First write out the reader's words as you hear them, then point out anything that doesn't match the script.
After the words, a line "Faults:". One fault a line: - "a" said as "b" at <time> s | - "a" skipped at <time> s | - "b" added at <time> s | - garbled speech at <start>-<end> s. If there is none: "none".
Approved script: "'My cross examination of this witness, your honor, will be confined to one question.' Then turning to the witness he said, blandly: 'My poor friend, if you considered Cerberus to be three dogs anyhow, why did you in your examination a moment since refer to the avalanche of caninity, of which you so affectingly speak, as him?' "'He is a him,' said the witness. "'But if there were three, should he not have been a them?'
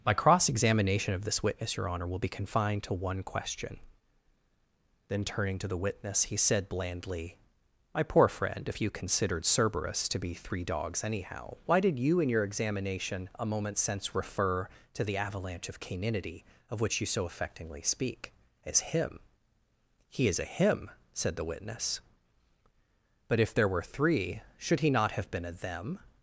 "'My cross examination of this witness, your honor, will be confined to one question.' Then turning to the witness he said, blandly: 'My poor friend, if you considered Cerberus to be three dogs anyhow, why did you in your examination a moment since refer to the avalanche of caninity, of which you so affectingly speak, as him?' "'He is a him,' said the witness. "'But if there were three, should he not have been a them?'
Faults:
none